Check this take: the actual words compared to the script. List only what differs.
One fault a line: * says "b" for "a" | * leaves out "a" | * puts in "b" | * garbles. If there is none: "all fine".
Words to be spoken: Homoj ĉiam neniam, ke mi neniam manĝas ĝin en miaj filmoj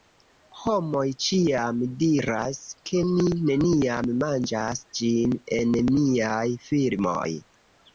* says "diras" for "neniam"